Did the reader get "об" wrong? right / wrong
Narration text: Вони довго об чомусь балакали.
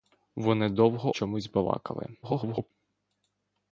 wrong